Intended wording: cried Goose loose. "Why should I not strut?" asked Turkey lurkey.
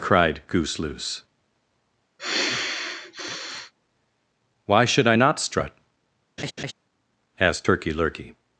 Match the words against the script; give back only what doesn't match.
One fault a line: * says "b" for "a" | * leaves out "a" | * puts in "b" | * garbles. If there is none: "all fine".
all fine